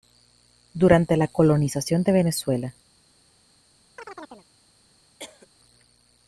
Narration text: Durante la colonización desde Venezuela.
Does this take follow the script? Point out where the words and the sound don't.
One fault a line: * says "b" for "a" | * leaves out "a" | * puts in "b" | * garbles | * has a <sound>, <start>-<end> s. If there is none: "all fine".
* says "de" for "desde"
* has a chirp, 4.0-4.5 s
* has a cough, 5.2-5.5 s